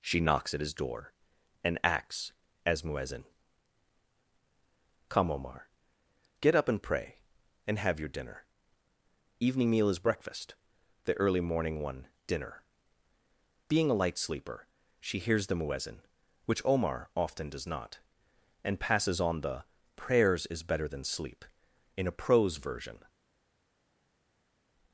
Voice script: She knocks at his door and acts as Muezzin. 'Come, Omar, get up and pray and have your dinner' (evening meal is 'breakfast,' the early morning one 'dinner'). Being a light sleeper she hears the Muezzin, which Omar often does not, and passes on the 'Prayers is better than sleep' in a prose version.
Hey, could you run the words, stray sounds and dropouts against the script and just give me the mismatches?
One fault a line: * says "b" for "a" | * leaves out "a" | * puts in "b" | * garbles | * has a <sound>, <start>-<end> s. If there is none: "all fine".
all fine